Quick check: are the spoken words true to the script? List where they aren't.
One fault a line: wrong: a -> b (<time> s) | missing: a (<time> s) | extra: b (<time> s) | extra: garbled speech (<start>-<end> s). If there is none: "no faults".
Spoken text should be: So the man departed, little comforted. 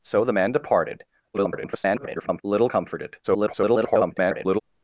extra: garbled speech (1.3-2.4 s)
extra: garbled speech (3.2-4.6 s)